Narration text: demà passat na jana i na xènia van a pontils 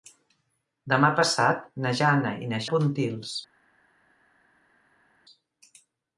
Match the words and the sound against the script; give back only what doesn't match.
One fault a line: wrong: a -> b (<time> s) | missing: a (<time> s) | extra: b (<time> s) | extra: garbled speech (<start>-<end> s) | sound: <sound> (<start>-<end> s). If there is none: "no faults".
missing: xènia van (2.6 s)